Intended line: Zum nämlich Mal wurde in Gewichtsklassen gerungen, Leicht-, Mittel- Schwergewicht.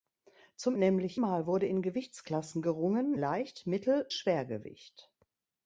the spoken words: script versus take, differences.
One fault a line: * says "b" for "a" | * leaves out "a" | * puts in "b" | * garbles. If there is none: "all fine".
all fine